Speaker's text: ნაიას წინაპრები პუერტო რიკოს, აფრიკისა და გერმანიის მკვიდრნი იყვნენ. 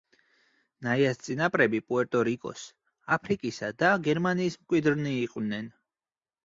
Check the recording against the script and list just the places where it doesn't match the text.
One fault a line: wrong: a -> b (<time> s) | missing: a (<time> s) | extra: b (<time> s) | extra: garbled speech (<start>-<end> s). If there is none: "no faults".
no faults